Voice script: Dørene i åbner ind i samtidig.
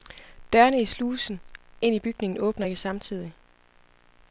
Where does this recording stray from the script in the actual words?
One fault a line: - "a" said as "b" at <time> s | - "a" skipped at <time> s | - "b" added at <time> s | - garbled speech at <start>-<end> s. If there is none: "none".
- "åbner" said as "slusen" at 0.8 s
- "bygningen åbner ikke" added at 2.0 s